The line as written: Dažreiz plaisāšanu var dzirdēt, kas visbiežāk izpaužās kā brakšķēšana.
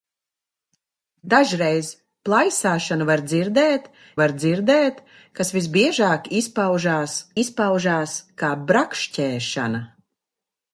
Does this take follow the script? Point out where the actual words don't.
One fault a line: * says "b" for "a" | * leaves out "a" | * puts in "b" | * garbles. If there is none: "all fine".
* puts in "var dzirdēt"
* puts in "izpaužās"